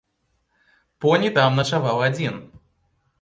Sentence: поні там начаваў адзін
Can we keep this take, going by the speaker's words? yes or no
yes